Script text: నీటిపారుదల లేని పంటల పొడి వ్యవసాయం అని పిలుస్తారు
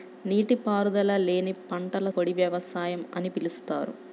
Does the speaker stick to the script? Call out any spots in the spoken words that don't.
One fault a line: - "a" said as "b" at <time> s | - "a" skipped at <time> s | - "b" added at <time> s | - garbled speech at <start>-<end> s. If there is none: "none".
none